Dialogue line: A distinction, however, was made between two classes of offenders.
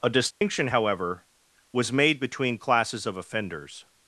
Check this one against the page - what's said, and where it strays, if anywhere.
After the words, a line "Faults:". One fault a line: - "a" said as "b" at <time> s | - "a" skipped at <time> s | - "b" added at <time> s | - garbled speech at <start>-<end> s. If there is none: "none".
A distinction, however, was made between classes of offenders.
Faults:
- "two" skipped at 2.6 s